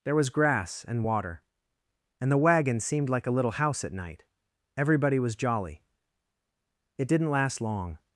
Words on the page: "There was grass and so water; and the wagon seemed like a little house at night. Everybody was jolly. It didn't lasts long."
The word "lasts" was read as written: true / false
false